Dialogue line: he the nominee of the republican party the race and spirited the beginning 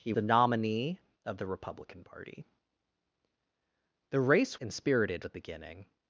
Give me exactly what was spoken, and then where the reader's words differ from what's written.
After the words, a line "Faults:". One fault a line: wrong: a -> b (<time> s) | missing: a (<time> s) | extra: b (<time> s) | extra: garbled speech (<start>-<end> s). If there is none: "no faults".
he the nominee of the republican party the race and spirited the beginning
Faults:
no faults